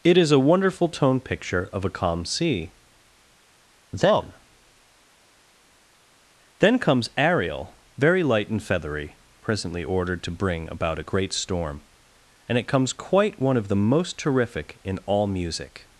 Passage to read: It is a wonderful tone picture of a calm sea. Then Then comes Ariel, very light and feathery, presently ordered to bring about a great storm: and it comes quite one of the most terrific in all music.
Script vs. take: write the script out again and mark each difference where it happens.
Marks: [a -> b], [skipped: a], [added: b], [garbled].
It is a wonderful tone picture of a calm sea. Then Then comes Ariel, very light and feathery, presently ordered to bring about a great storm: and it comes quite one of the most terrific in all music.